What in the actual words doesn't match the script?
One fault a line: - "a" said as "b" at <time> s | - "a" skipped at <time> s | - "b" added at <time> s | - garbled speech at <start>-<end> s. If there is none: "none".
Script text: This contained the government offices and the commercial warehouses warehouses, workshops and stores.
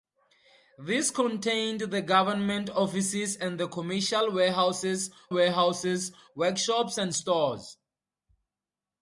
none